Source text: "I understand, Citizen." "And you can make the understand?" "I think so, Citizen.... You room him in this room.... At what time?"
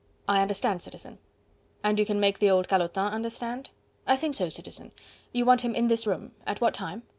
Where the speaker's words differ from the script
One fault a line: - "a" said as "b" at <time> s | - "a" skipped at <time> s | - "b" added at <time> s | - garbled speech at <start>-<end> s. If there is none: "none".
- "old calotin" added at 2.5 s
- "room" said as "want" at 5.4 s